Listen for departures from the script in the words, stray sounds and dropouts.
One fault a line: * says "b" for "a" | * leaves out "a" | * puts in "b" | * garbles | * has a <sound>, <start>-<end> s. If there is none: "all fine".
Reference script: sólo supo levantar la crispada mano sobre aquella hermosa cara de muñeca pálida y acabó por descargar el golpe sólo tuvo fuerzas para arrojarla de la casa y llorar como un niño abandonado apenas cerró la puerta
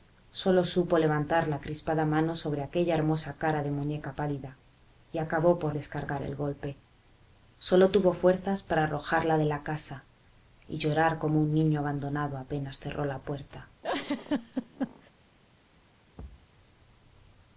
* has a laugh, 13.8-15.1 s
* has a thud, 16.2-16.5 s